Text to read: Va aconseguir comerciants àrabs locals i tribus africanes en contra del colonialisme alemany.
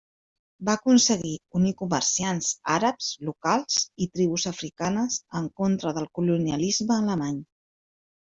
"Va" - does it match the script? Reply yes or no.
yes